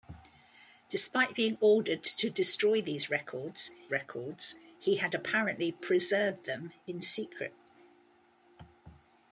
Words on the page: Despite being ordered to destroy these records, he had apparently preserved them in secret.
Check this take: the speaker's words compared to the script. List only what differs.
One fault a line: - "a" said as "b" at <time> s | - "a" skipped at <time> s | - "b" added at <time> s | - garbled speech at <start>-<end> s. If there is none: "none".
- "records" added at 3.9 s